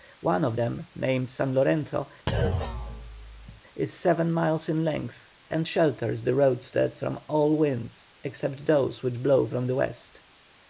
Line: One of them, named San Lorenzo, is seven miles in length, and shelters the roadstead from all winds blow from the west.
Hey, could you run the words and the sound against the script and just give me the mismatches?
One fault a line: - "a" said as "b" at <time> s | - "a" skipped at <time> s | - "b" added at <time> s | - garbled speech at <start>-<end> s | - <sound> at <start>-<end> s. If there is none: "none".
- thud at 2.3-3.6 s
- "except those which" added at 8.2 s